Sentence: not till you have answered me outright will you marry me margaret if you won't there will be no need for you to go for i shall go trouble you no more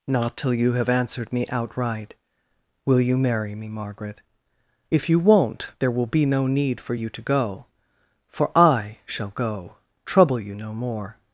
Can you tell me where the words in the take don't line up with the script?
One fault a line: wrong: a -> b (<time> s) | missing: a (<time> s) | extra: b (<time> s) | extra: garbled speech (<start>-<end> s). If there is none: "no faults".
no faults